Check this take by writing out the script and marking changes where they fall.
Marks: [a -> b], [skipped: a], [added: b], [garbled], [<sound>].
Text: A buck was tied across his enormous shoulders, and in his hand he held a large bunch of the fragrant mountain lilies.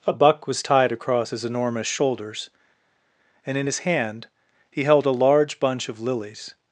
A buck was tied across his enormous shoulders, and in his hand he held a large bunch of [skipped: the fragrant mountain] lilies.